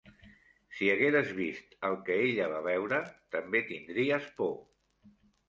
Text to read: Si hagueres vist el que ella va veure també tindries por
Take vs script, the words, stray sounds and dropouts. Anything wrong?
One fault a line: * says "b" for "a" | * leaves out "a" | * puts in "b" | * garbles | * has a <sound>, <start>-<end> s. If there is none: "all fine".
all fine